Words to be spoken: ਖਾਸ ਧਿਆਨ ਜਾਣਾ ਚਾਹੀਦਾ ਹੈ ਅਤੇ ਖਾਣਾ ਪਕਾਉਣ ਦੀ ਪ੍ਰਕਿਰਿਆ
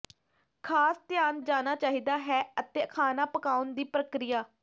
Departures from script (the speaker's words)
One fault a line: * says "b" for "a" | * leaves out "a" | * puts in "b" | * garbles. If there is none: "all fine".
all fine